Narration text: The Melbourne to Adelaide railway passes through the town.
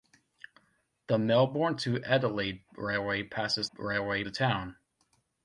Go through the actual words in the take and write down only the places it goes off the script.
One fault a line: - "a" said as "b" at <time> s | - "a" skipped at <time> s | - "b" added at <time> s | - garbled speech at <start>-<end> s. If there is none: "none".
- "through" said as "railway" at 3.8 s